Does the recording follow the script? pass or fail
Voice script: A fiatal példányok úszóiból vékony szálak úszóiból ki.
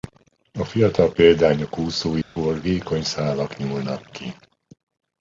fail